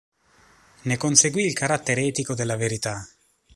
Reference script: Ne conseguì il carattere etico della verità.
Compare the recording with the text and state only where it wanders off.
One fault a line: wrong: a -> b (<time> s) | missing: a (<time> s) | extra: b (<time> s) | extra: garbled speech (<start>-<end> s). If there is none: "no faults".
no faults